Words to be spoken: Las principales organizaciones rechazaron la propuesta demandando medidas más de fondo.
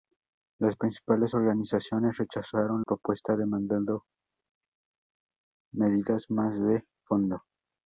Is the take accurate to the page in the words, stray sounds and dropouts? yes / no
no